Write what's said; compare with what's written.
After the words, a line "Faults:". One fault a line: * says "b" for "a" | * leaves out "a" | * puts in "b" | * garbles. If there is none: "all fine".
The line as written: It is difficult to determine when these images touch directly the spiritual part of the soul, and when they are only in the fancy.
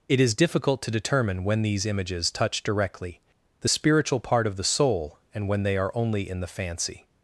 It is difficult to determine when these images touch directly the spiritual part of the soul, and when they are only in the fancy.
Faults:
all fine